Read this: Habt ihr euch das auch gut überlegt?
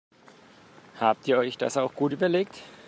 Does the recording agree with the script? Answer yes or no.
yes